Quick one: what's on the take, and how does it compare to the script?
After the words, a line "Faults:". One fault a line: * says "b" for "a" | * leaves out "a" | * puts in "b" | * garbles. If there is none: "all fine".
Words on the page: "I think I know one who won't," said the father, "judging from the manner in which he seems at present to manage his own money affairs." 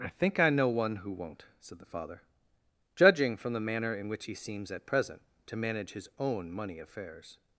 "I think I know one who won't," said the father, "judging from the manner in which he seems at present to manage his own money affairs."
Faults:
all fine